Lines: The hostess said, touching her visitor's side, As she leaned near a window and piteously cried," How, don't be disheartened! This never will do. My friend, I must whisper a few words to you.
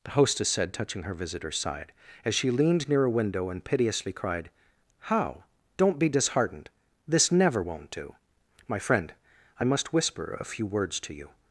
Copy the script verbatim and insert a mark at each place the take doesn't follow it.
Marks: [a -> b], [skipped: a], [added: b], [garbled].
The hostess said, touching her visitor's side, As she leaned near a window and piteously cried," How, don't be disheartened! This never [will -> won't] do. My friend, I must whisper a few words to you.